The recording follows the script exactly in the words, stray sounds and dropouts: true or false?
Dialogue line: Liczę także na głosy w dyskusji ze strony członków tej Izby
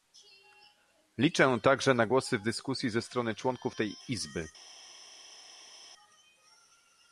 true